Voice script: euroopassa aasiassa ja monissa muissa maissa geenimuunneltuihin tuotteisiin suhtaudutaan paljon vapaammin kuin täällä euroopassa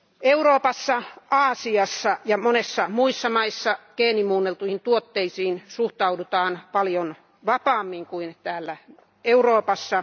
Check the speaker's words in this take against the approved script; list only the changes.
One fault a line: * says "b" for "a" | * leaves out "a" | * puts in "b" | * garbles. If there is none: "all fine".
all fine